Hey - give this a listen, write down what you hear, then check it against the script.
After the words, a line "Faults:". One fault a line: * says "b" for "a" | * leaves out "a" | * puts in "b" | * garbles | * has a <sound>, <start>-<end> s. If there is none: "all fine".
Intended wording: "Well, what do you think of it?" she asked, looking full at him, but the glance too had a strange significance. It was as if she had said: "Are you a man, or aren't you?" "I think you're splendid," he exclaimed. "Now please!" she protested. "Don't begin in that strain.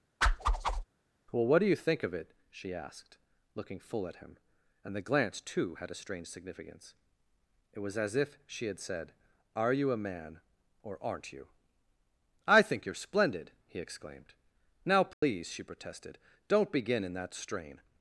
"Well, what do you think of it?" she asked, looking full at him, and the glance too had a strange significance. It was as if she had said: "Are you a man, or aren't you?" "I think you're splendid," he exclaimed. "Now please!" she protested. "Don't begin in that strain.
Faults:
* has a whoosh, 0.2-0.8 s
* says "and" for "but"
* has a dropout, 15.1-15.2 s